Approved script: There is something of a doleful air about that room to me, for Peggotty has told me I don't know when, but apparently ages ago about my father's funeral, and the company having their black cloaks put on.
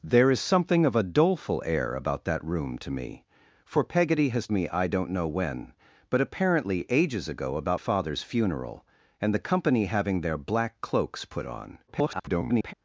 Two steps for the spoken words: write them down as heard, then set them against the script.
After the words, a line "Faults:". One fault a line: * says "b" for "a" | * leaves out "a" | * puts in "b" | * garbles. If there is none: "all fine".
There is something of a doleful air about that room to me, for Peggotty has me I don't know when, but apparently ages ago about father's funeral, and the company having their black cloaks put on. [garbled]
Faults:
* leaves out "told"
* leaves out "my"
* garbles